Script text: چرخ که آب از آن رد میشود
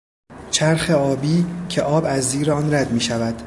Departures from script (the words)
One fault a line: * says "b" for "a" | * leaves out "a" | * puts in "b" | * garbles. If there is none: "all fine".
* puts in "آبی"
* puts in "زیر"